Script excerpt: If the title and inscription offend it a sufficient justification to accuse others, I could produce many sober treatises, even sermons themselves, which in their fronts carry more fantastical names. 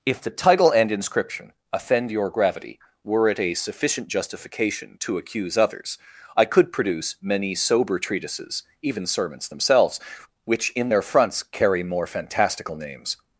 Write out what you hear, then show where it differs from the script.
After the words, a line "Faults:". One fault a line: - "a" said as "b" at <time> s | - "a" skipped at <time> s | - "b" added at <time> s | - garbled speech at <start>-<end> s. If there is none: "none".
If the title and inscription offend your gravity, were it a sufficient justification to accuse others, I could produce many sober treatises, even sermons themselves, which in their fronts carry more fantastical names.
Faults:
- "your gravity were" added at 2.1 s